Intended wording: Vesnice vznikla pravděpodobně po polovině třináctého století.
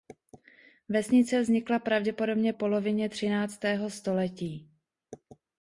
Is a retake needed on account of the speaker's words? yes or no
yes